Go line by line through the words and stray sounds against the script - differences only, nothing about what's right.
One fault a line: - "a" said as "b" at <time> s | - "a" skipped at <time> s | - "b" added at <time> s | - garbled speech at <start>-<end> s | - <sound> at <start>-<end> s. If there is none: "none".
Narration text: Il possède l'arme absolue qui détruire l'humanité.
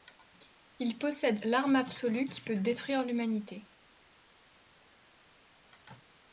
- "peut" added at 2.4 s